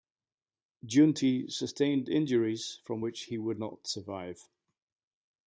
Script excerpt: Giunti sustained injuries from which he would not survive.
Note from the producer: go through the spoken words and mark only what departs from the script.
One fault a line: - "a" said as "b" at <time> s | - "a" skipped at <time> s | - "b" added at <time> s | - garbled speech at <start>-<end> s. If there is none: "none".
none